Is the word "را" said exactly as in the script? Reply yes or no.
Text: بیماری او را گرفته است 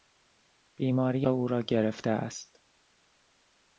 yes